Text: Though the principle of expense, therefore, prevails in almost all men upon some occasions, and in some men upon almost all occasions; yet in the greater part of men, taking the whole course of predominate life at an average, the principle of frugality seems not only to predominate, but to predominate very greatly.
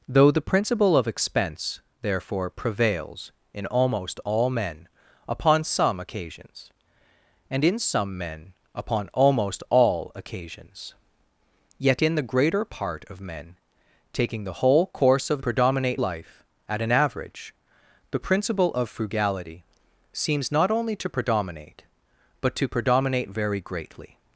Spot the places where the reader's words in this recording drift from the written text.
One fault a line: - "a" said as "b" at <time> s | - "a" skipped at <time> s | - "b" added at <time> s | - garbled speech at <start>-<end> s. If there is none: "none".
none